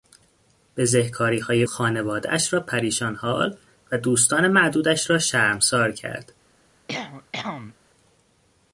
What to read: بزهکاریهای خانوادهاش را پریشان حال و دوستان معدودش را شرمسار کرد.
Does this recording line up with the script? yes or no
yes